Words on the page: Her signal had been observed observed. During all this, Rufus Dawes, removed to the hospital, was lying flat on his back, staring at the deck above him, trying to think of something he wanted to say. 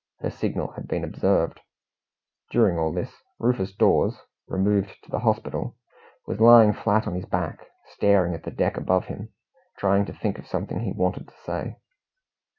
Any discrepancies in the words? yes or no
yes